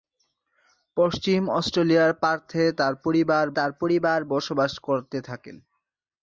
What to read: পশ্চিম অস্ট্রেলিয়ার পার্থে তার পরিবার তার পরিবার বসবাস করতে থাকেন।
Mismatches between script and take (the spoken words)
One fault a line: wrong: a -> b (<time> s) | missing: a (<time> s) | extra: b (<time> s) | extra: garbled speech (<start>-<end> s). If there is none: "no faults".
no faults